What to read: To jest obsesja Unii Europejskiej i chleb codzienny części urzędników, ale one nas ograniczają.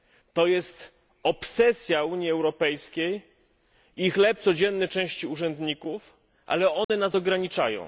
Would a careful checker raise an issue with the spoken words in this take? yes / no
no